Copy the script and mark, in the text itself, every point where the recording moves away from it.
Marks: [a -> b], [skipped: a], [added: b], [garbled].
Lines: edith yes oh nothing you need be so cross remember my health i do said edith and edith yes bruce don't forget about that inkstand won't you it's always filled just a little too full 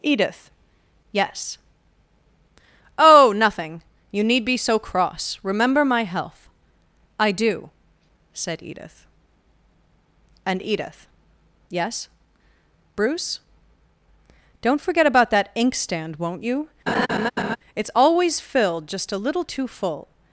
edith yes oh nothing you need be so cross remember my health i do said edith and edith yes bruce don't forget about that inkstand won't you it's always filled just a little too full